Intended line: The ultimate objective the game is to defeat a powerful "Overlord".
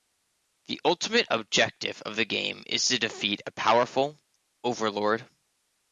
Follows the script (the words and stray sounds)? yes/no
no